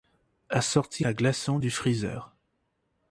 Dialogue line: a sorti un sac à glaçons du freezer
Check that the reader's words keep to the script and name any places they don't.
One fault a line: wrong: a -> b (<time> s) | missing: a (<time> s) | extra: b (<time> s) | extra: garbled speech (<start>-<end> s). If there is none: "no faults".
missing: un sac (1.1 s)